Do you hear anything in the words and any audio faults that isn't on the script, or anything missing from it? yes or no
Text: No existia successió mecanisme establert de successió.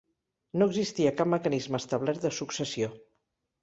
yes